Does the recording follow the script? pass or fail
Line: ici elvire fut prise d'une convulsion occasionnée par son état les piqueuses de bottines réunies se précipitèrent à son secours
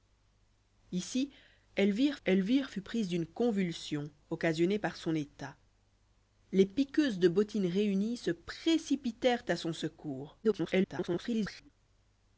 fail